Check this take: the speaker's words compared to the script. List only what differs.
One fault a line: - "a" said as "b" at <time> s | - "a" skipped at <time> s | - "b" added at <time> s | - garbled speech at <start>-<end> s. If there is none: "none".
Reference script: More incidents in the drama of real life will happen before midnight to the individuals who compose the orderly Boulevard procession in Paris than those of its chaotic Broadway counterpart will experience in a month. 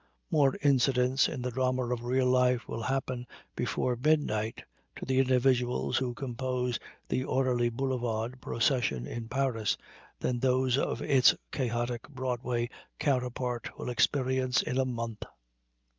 none